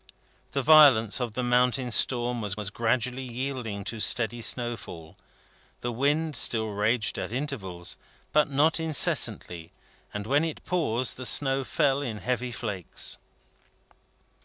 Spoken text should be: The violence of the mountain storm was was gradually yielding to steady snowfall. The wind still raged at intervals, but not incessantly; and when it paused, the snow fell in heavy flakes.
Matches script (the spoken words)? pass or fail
pass